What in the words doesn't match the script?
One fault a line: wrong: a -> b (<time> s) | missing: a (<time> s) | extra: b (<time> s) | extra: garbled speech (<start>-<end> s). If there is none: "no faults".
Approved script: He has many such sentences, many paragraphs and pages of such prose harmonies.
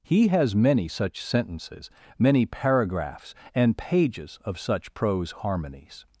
no faults